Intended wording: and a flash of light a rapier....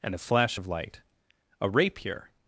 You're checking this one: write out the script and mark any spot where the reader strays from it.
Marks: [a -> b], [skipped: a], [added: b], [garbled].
and a flash of light a rapier....